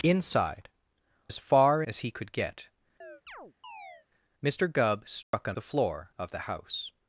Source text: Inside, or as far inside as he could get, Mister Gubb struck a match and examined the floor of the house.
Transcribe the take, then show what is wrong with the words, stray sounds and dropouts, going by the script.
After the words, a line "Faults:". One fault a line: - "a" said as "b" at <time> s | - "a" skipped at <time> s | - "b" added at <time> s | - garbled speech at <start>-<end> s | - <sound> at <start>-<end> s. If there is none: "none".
Inside, as far as he could get, Mister Gubb struck a the floor of the house.
Faults:
- "or" skipped at 0.7 s
- "inside" skipped at 1.8 s
- chirp at 3.0-4.1 s
- dropout at 5.2-5.3 s
- "match and examined" skipped at 5.5 s